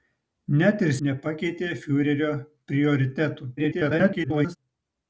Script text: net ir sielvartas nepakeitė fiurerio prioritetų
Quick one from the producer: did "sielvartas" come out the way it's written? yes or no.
no